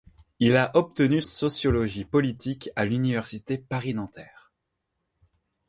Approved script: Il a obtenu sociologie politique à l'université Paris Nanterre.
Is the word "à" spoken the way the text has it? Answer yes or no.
yes